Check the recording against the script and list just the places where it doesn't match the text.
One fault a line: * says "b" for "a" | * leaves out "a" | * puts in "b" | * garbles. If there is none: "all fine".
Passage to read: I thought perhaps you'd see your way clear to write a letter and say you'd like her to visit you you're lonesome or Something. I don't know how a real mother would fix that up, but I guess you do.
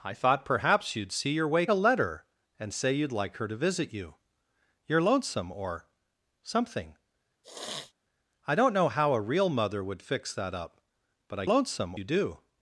* leaves out "clear to write"
* says "lonesome" for "guess"